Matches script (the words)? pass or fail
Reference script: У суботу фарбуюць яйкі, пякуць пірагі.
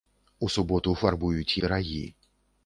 fail